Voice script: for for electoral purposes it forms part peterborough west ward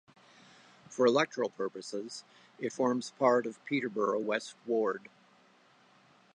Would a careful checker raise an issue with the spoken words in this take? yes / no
yes